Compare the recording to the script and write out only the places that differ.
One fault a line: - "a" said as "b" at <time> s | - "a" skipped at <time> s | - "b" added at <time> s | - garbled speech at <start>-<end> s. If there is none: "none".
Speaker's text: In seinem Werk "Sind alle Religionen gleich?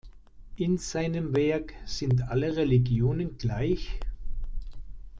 none